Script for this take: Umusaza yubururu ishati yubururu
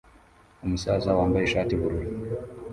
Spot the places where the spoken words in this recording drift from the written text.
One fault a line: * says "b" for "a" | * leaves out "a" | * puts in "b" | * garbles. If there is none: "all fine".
* says "wambaye" for "yubururu"